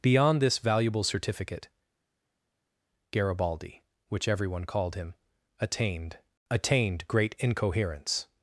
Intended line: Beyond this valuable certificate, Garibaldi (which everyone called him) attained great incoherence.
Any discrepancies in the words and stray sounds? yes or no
yes